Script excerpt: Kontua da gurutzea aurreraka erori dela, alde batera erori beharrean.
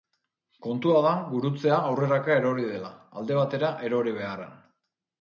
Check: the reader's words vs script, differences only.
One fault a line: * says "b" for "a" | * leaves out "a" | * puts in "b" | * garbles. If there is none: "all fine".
all fine